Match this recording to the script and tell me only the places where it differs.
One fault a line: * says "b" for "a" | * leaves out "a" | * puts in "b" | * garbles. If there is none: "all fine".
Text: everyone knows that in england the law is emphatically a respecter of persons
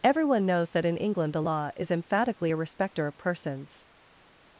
all fine